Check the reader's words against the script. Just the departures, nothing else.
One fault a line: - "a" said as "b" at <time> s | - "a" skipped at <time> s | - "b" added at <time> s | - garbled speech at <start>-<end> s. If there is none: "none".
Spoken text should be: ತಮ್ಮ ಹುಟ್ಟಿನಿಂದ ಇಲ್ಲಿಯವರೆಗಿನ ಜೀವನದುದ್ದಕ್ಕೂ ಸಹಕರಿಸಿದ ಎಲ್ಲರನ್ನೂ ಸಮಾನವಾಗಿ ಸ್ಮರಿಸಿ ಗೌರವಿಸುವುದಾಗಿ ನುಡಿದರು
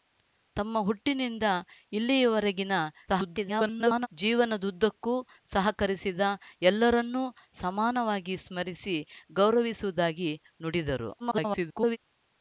- garbled speech at 3.1-4.1 s
- garbled speech at 11.2-12.0 s